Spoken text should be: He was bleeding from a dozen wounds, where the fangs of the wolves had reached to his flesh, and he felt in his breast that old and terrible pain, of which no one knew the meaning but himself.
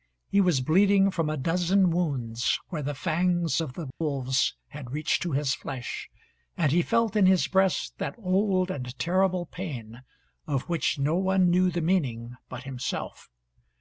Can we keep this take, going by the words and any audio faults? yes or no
no